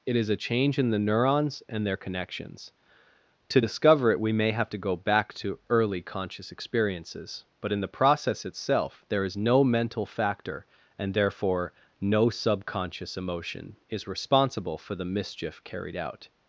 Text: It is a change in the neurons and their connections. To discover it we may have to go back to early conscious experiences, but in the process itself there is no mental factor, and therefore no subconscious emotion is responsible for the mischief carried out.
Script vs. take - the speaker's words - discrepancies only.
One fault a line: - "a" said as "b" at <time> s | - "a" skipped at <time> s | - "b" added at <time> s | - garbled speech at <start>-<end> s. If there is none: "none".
none